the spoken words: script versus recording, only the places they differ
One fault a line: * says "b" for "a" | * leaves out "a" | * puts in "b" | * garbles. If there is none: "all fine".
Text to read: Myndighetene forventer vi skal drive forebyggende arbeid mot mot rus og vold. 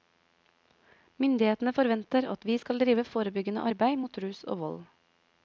* puts in "at"
* leaves out "mot"